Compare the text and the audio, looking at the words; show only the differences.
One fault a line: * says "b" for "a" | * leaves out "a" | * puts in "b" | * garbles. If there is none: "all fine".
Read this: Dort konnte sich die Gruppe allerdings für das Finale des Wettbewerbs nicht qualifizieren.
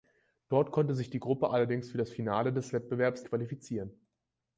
* leaves out "nicht"